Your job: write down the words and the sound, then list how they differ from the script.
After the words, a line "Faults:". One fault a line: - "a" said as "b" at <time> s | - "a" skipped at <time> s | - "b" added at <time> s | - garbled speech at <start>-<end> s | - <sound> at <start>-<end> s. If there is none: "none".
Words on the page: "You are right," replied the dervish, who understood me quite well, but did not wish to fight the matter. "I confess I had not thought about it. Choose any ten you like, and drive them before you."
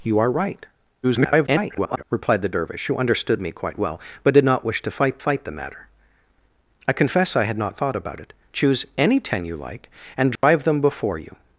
"You are right," [garbled] replied the dervish, who understood me quite well, but did not wish to fight fight the matter. "I confess I had not thought about it. Choose any ten you like, and drive them before you."
Faults:
- garbled speech at 1.0-2.0 s
- "fight" added at 5.2 s
- dropout at 10.4-10.4 s